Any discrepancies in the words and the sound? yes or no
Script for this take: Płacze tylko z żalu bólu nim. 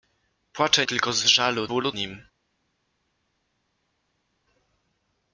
no